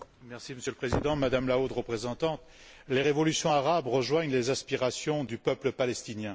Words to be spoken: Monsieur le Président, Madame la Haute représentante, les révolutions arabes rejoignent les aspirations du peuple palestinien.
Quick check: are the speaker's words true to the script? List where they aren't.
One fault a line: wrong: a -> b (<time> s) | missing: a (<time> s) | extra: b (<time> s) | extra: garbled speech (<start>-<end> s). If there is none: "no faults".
no faults